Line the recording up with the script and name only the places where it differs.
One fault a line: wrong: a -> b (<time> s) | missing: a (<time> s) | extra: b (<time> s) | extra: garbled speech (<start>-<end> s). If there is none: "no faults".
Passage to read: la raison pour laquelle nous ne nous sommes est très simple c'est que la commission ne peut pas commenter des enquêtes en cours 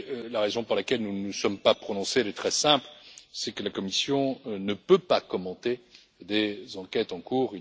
extra: pas prononcés (1.6 s)